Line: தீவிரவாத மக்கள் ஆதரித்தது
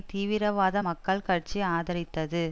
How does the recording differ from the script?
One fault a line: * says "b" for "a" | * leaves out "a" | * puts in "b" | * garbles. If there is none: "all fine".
* puts in "கட்சி"